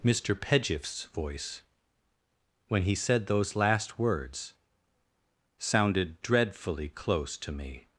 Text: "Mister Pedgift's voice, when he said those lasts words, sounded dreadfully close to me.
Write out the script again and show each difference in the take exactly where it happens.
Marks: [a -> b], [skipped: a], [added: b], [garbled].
"Mister Pedgift's voice, when he said those [lasts -> last] words, sounded dreadfully close to me.